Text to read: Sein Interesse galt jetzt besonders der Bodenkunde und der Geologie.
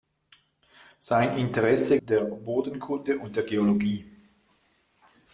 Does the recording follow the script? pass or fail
fail